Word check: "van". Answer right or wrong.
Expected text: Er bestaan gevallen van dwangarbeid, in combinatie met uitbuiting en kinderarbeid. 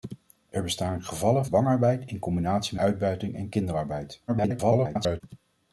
wrong